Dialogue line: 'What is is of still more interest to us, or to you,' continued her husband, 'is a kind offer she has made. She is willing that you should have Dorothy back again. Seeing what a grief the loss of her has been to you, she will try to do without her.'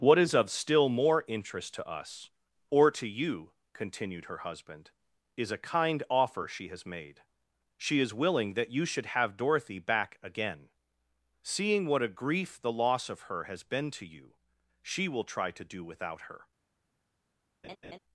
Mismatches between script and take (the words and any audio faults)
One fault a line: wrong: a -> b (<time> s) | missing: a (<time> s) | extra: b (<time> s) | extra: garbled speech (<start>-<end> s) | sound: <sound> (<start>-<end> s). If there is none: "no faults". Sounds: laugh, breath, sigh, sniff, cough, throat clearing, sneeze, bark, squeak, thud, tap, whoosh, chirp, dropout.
missing: is (0.3 s)
sound: laugh (17.6-18.0 s)